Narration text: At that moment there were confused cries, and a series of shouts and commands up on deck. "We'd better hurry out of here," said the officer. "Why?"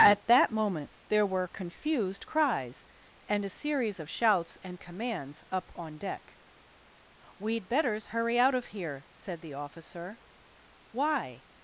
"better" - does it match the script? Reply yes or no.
no